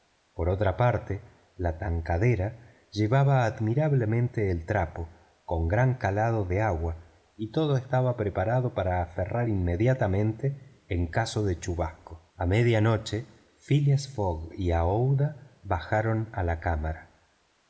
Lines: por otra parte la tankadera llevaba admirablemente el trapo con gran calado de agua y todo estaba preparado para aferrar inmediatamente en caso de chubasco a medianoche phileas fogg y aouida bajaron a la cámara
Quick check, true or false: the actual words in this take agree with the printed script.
true